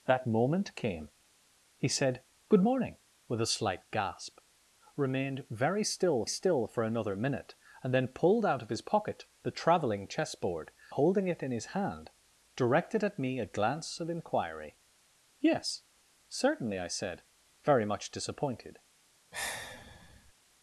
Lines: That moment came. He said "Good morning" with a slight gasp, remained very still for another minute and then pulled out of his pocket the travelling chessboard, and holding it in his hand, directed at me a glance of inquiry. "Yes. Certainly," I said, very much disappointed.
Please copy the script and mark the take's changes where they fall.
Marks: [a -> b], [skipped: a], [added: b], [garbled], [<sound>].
That moment came. He said "Good morning" with a slight gasp, remained very still [added: still] for another minute and then pulled out of his pocket the travelling chessboard, [skipped: and] holding it in his hand, directed at me a glance of inquiry. "Yes. Certainly," I said, very much disappointed. [sigh]